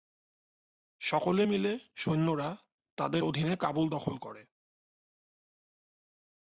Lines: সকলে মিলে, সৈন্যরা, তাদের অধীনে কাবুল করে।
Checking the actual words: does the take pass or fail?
fail